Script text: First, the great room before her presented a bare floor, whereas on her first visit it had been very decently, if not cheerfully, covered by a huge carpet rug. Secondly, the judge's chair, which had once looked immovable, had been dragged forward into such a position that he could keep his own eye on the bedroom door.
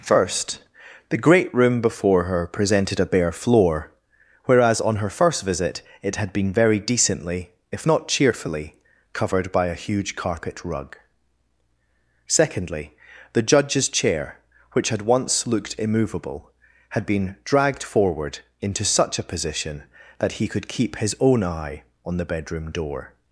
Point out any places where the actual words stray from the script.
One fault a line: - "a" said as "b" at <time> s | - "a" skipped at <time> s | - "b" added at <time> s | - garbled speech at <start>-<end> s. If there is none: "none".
none